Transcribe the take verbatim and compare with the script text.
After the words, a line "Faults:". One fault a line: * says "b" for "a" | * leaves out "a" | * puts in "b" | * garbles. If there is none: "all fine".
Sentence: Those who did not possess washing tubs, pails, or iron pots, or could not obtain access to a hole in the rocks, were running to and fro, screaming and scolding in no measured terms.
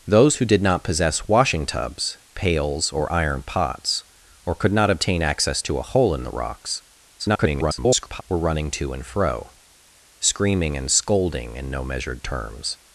Those who did not possess washing tubs, pails, or iron pots, or could not obtain access to a hole in the rocks, [garbled] were running to and fro, screaming and scolding in no measured terms.
Faults:
* garbles